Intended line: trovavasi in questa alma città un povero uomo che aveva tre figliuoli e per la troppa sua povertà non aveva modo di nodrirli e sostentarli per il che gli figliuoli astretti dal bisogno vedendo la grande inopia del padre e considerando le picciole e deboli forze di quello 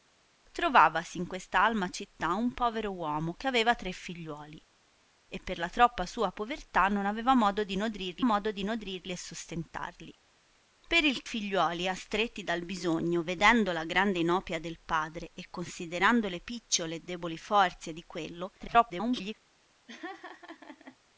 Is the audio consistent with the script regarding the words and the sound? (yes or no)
no